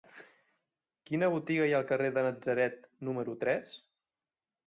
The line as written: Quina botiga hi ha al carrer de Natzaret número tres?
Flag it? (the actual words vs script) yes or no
no